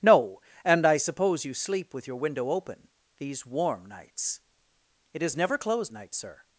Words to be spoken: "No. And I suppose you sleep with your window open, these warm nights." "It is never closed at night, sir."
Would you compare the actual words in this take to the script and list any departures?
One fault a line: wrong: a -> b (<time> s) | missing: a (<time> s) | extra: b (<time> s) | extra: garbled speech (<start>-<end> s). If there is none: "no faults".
missing: at (5.9 s)